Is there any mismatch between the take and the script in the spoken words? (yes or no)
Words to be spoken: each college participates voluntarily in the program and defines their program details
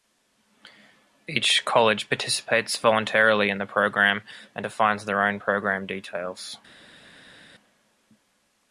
yes